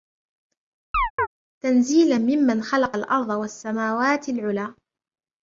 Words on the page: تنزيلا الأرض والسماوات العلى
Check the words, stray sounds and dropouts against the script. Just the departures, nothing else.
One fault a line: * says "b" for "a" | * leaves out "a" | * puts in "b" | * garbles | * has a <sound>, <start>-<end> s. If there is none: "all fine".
* has a chirp, 0.9-1.3 s
* puts in "ممن خلق"